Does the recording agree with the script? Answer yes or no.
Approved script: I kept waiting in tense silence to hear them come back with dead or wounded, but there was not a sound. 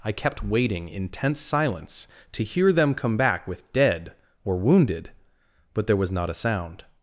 yes